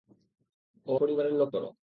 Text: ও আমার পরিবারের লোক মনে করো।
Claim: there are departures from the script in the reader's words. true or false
true